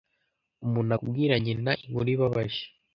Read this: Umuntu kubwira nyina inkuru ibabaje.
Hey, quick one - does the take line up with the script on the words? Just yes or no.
yes